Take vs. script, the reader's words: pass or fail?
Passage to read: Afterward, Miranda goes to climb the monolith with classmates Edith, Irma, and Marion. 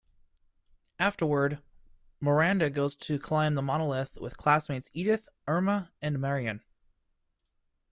pass